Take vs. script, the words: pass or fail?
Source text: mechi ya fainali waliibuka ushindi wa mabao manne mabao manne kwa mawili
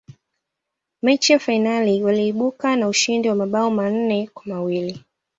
fail